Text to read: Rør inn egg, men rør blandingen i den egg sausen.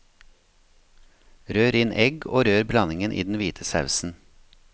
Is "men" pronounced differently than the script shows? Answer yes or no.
yes